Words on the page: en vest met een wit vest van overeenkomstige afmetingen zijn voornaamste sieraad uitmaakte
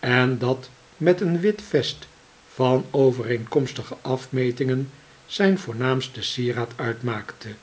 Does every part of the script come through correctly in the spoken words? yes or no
no